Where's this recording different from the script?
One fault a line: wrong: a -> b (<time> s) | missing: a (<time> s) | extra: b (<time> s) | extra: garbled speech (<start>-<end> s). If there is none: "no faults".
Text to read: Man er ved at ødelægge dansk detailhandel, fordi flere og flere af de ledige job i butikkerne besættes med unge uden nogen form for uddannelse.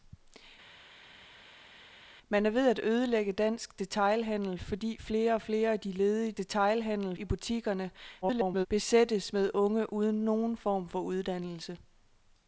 wrong: job -> detailhandel (6.4 s)
extra: garbled speech (8.2-8.7 s)